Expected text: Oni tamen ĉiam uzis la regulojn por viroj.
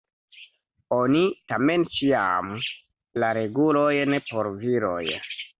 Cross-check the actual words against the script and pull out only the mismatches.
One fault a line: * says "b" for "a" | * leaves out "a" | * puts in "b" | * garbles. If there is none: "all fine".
* leaves out "uzis"